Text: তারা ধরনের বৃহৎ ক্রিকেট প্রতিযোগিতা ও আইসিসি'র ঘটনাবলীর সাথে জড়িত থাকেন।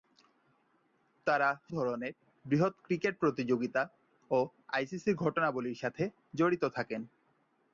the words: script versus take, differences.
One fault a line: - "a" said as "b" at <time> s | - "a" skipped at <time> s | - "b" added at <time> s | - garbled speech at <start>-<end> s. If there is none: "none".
none